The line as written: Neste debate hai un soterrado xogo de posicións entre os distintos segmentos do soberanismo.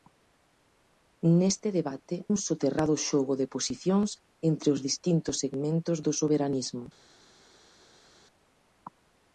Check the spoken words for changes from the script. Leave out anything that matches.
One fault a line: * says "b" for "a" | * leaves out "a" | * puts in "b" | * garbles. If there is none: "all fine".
* leaves out "hai"